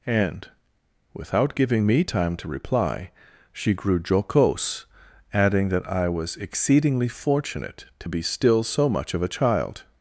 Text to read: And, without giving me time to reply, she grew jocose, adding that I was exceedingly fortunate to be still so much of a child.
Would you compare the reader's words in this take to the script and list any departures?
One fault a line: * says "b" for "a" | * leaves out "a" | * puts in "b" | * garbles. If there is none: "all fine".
all fine